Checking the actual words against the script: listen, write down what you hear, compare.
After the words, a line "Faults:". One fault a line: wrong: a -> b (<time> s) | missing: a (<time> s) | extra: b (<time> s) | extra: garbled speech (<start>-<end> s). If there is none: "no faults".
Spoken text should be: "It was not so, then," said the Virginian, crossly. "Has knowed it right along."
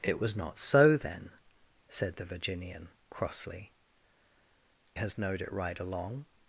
"It was not so, then," said the Virginian, crossly. "Has knowed it right along."
Faults:
no faults